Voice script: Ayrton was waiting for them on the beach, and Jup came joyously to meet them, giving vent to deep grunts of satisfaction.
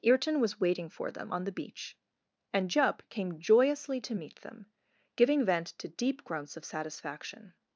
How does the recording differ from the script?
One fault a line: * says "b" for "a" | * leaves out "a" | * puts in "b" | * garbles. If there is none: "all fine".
all fine